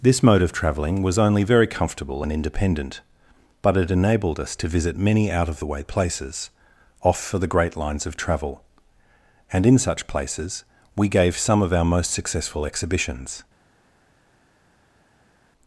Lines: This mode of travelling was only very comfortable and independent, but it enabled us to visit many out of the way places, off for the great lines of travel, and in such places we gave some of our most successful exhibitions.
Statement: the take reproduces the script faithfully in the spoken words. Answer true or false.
true